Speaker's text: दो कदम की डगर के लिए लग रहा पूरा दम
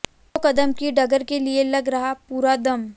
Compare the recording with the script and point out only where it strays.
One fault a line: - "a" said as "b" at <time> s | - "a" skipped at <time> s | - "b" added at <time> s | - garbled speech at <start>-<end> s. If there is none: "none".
none